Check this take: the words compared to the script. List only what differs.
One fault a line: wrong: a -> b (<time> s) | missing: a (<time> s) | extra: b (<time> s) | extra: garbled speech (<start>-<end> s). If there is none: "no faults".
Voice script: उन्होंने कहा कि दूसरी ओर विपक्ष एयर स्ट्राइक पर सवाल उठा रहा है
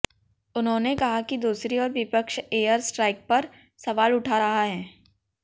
no faults